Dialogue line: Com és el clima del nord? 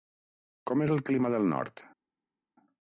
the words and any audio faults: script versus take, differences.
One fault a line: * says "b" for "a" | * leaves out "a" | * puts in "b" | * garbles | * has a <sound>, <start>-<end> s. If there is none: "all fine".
all fine